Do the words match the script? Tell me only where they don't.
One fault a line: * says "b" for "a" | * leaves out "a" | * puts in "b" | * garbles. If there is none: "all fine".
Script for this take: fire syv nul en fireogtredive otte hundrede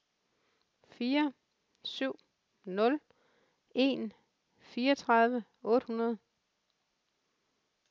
all fine